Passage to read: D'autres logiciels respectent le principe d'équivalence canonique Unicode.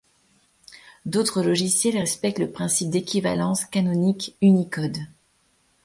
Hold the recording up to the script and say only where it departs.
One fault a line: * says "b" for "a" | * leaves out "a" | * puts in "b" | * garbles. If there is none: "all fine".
all fine